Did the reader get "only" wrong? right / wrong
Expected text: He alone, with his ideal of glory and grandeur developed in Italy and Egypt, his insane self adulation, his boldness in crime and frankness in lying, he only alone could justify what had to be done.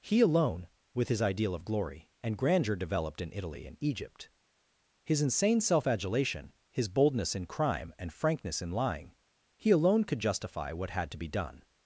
wrong